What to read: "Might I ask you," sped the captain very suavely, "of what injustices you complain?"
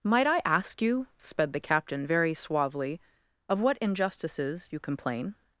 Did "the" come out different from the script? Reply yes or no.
no